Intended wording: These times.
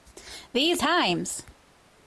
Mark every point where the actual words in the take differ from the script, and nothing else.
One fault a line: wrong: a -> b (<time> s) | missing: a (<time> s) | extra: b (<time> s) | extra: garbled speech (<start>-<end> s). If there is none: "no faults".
no faults